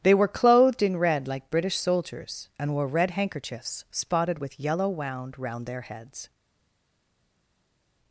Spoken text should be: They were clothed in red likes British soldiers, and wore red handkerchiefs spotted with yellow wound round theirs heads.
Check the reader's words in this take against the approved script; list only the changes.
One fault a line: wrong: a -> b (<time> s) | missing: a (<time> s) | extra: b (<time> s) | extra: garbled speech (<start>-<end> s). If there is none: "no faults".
wrong: likes -> like (1.3 s)
wrong: theirs -> their (5.7 s)